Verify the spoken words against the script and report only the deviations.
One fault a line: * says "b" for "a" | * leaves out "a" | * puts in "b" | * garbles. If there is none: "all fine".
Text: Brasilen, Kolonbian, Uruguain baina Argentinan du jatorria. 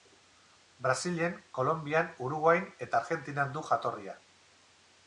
* says "eta" for "baina"